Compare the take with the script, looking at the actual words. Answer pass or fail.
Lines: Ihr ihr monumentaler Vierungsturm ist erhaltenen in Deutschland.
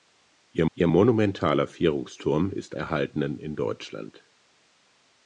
pass